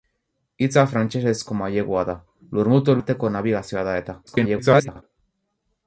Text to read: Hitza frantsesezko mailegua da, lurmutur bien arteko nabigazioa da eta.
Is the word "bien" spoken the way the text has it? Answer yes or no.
no